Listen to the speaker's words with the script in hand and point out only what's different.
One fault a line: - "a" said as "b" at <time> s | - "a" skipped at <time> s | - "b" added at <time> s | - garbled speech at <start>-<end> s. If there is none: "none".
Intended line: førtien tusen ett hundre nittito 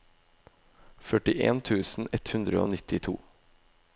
- "og" added at 2.6 s